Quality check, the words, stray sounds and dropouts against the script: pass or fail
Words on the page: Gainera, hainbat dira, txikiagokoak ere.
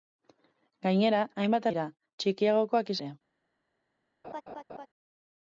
fail